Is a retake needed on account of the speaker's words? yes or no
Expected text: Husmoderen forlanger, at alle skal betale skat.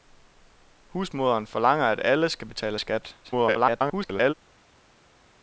yes